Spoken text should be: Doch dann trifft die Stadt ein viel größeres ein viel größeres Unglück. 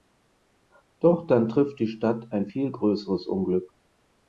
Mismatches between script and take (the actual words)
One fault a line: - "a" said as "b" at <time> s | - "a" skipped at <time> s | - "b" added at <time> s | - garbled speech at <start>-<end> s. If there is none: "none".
- "ein viel größeres" skipped at 3.3 s